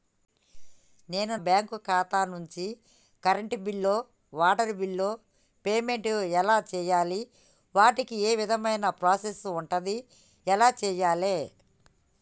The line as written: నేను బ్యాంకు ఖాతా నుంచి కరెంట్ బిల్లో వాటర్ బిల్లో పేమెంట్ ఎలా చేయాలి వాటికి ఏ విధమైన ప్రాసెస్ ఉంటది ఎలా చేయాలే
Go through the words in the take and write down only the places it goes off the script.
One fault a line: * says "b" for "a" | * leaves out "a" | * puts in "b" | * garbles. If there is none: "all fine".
all fine